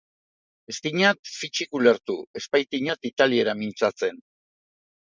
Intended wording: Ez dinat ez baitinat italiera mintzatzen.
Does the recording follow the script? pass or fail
fail